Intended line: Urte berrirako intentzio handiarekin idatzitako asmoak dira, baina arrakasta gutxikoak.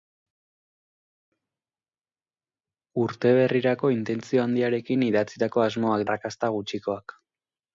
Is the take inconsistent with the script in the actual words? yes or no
yes